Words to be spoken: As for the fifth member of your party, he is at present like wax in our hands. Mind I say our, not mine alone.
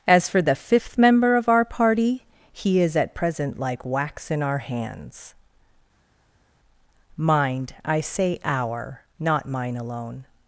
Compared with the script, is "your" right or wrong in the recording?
wrong